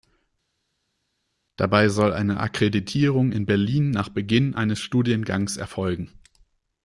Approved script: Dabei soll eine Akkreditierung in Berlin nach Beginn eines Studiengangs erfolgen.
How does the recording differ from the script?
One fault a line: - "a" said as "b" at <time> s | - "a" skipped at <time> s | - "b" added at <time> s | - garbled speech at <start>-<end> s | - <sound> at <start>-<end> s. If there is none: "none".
none